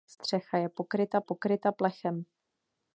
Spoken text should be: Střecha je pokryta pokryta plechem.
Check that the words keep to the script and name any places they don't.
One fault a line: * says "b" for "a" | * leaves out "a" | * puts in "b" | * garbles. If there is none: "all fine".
all fine